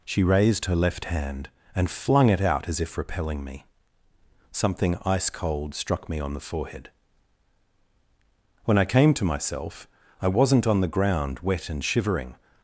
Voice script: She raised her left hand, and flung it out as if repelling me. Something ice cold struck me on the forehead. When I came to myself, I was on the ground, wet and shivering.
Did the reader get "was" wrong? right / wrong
wrong